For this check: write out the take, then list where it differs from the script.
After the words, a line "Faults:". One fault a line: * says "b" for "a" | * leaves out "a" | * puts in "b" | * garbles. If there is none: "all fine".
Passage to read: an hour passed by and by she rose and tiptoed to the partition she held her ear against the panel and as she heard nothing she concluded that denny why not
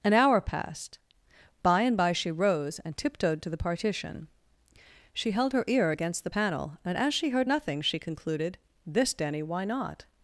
an hour passed by and by she rose and tiptoed to the partition she held her ear against the panel and as she heard nothing she concluded this denny why not
Faults:
* says "this" for "that"